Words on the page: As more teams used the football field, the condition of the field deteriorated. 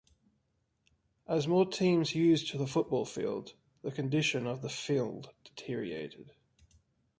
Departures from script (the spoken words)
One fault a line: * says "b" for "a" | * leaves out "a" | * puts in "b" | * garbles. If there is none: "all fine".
all fine